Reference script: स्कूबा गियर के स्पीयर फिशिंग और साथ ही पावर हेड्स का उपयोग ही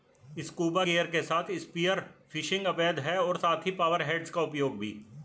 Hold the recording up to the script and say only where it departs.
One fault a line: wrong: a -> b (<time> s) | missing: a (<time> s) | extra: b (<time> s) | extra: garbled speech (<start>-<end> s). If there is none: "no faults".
extra: साथ (1.2 s)
extra: अवैध है (2.7 s)
wrong: ही -> भी (4.8 s)